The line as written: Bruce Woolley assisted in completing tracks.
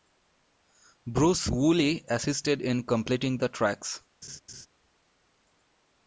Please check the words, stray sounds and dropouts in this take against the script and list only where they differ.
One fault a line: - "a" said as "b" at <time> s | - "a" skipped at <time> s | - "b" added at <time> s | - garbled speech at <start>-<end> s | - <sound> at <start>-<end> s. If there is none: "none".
- "the" added at 3.4 s
- laugh at 4.2-4.7 s